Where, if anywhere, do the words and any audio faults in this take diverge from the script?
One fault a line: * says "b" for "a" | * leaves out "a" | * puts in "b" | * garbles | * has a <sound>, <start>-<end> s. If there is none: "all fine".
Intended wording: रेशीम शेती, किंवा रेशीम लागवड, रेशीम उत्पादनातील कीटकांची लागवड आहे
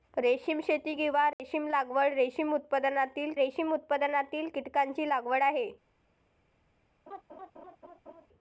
* has a dropout, 1.3-1.4 s
* puts in "रेशीम उत्पादनातील"
* has a laugh, 7.1-8.3 s